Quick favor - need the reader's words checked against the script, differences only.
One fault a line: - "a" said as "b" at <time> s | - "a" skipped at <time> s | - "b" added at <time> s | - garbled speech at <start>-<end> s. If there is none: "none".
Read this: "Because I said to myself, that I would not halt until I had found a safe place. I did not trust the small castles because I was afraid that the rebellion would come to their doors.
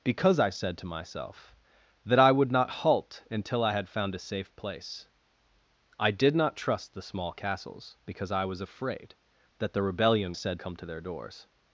- "would" said as "said" at 10.3 s